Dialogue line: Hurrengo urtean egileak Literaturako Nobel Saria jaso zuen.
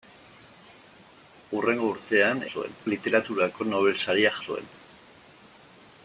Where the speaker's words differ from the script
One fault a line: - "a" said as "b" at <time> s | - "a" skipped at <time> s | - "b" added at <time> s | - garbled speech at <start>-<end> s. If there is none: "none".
- "egileak" said as "zuen" at 2.5 s
- "jaso" skipped at 4.3 s